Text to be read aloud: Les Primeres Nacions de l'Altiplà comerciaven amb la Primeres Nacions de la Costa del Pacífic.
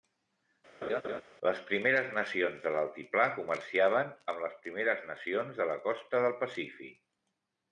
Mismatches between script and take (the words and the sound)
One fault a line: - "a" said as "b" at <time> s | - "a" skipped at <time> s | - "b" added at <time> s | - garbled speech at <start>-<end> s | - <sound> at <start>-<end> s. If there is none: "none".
- laugh at 0.8-1.2 s
- "la" said as "les" at 4.5 s